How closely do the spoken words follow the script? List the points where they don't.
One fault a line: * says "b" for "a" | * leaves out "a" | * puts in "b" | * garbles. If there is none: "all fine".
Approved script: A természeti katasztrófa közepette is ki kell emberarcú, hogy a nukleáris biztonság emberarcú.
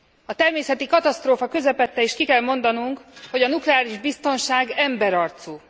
* says "mondanunk" for "emberarcú"